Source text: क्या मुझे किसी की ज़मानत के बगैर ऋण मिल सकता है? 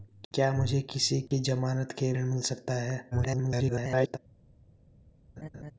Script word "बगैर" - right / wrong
wrong